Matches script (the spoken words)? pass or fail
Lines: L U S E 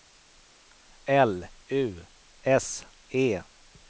pass